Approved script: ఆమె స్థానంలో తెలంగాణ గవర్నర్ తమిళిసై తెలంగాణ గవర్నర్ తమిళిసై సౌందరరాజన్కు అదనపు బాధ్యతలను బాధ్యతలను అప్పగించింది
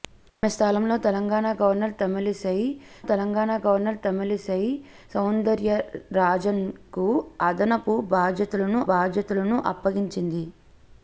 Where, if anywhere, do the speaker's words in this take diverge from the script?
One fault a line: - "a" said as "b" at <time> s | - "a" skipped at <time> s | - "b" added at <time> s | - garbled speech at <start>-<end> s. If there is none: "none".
none